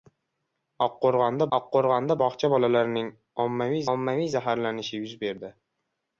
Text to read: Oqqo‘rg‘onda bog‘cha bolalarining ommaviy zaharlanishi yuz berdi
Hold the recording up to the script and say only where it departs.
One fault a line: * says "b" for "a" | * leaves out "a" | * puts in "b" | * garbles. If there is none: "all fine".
* puts in "oqqo‘rg‘onda"
* puts in "ommaviy"